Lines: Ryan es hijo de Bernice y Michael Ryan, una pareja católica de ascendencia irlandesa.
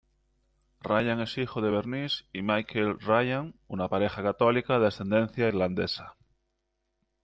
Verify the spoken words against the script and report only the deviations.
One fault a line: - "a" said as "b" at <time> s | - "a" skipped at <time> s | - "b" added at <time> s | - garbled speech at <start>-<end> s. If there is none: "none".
none